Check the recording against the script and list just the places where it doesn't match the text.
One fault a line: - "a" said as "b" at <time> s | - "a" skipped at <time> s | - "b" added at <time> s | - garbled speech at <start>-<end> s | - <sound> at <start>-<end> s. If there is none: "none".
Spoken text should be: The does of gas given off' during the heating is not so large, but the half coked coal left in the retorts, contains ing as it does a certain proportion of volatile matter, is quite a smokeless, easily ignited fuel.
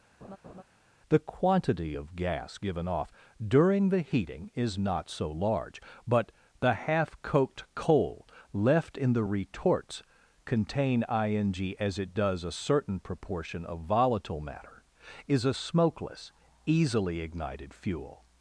- laugh at 0.2-0.6 s
- "does" said as "quantity" at 1.2 s
- "contains" said as "contain" at 10.4 s
- "quite" skipped at 15.4 s